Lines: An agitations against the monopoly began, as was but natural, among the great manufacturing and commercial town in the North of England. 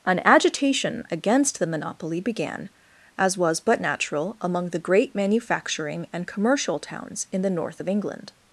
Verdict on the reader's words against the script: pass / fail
fail